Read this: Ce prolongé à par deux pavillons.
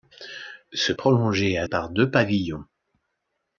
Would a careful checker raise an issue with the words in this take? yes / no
no